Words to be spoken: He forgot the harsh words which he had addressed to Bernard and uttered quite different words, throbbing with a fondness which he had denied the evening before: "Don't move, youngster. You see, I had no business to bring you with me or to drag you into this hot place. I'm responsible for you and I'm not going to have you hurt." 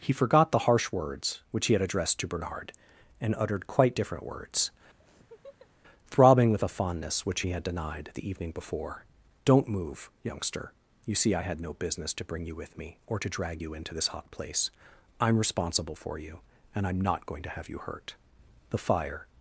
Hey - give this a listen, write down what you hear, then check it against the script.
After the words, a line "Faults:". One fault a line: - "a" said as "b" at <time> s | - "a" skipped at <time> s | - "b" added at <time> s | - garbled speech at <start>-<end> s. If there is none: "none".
He forgot the harsh words which he had addressed to Bernard and uttered quite different words, throbbing with a fondness which he had denied the evening before: "Don't move, youngster. You see, I had no business to bring you with me or to drag you into this hot place. I'm responsible for you and I'm not going to have you hurt." The fire
Faults:
- "The fire" added at 18.7 s